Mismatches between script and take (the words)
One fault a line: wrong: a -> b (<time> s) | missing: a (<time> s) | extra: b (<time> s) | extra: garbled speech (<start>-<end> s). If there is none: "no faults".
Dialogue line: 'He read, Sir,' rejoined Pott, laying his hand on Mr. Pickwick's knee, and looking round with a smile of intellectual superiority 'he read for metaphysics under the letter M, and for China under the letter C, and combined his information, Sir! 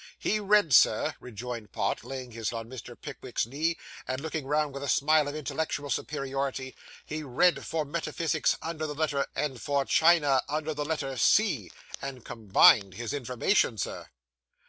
missing: hand (2.5 s)
missing: M (9.3 s)